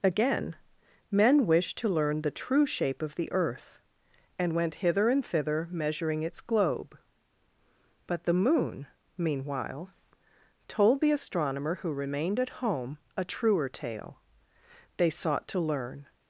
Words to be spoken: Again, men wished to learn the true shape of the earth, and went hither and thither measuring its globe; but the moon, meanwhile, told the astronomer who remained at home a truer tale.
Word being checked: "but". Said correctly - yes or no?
yes